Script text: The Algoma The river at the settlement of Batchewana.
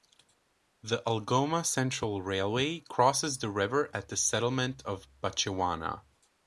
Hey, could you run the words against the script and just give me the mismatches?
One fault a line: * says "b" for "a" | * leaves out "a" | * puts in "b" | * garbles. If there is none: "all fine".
* puts in "Central Railway crosses"